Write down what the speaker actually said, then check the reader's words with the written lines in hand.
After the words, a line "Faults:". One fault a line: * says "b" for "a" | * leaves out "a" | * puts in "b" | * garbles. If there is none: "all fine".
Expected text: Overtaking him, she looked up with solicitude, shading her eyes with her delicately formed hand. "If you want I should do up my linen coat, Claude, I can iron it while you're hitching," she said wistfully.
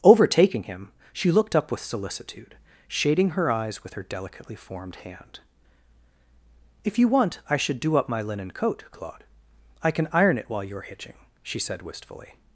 Overtaking him, she looked up with solicitude, shading her eyes with her delicately formed hand. "If you want I should do up my linen coat, Claude, I can iron it while you're hitching," she said wistfully.
Faults:
all fine